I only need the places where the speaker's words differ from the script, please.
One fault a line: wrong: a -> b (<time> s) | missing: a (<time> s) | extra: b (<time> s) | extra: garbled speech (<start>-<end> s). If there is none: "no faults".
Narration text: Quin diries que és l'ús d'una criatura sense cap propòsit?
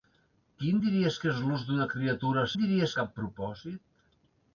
wrong: sense -> diries (2.6 s)